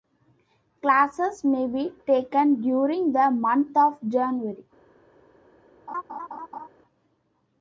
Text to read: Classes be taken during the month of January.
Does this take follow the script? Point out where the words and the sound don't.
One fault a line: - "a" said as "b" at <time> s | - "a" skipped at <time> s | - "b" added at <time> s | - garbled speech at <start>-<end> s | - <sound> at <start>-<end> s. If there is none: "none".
- "may" added at 1.4 s
- laugh at 5.9-6.7 s